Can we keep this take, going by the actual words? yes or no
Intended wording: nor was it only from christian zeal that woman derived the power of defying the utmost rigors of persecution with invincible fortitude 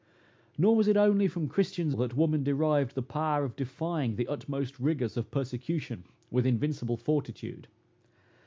no